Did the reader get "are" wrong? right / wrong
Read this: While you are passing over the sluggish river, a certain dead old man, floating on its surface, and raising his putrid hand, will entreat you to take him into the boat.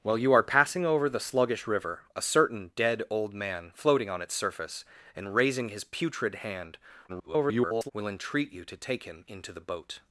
right